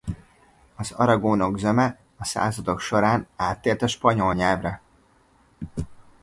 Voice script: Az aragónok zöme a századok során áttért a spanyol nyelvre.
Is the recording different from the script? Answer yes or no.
no